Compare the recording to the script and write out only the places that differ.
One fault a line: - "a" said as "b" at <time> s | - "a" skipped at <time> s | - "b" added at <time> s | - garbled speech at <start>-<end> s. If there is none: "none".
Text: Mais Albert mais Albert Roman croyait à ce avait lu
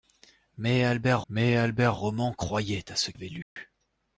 none